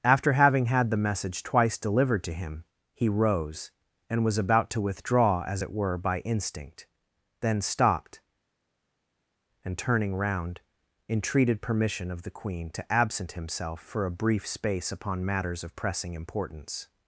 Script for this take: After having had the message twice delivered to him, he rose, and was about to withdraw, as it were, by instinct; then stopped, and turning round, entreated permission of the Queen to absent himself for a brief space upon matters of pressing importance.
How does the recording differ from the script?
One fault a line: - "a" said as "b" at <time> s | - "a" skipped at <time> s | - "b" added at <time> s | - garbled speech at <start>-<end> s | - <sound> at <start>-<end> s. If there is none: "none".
none